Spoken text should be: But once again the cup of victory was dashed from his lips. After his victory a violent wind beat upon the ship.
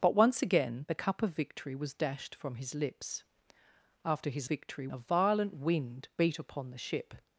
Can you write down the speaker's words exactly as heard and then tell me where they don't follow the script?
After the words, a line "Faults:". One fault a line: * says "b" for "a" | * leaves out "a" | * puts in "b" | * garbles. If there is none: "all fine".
But once again the cup of victory was dashed from his lips. After his victory a violent wind beat upon the ship.
Faults:
all fine